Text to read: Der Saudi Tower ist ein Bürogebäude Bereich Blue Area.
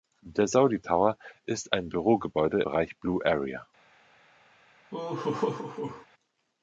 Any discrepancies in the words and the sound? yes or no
yes